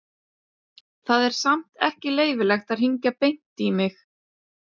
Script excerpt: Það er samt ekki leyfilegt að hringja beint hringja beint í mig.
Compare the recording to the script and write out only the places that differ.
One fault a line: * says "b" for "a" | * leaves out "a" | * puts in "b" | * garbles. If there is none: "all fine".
* leaves out "hringja beint"